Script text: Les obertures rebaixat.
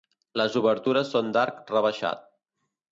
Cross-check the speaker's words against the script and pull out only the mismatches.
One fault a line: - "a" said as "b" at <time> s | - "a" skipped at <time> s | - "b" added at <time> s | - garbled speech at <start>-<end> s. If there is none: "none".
- "són d'arc" added at 1.2 s